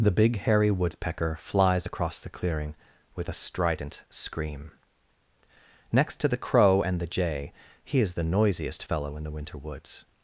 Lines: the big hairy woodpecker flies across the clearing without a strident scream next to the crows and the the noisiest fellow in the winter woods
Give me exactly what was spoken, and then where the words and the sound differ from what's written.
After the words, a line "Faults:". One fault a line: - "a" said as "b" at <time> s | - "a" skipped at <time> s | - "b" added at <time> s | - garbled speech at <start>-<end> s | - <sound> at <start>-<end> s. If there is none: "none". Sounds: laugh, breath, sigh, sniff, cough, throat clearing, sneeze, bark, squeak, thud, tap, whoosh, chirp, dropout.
the big hairy woodpecker flies across the clearing with a strident scream next to the crow and the jay he is the noisiest fellow in the winter woods
Faults:
- "without" said as "with" at 3.2 s
- "crows" said as "crow" at 6.4 s
- "jay he is" added at 7.1 s